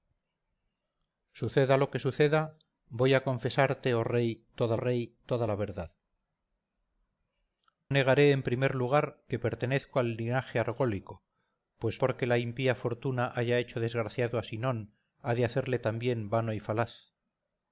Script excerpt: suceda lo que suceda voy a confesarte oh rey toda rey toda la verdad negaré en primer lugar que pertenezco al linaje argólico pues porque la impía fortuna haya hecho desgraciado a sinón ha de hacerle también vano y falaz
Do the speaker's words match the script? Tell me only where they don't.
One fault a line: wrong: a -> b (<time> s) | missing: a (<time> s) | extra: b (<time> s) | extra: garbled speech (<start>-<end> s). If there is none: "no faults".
no faults